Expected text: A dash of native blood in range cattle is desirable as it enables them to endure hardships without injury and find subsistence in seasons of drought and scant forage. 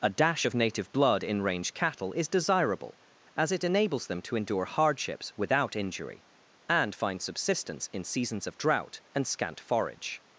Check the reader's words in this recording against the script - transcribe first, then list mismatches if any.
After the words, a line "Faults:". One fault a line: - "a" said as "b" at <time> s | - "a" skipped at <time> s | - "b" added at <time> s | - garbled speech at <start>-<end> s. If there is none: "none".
A dash of native blood in range cattle is desirable as it enables them to endure hardships without injury and find subsistence in seasons of drought and scant forage.
Faults:
none